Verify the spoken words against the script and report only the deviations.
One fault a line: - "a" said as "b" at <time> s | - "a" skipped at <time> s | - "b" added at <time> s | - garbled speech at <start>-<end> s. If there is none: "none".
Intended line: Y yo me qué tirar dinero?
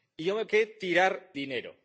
none